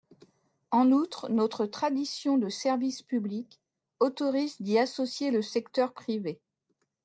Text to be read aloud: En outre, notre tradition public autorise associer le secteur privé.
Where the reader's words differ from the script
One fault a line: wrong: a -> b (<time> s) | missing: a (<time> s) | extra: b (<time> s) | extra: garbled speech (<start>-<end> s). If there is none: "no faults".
extra: de service (2.4 s)
extra: d'y (4.6 s)